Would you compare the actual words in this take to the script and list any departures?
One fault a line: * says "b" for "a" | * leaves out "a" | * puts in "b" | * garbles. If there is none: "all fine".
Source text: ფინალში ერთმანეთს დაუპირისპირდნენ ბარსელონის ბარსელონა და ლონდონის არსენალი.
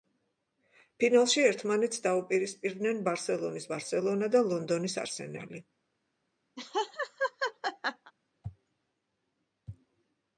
all fine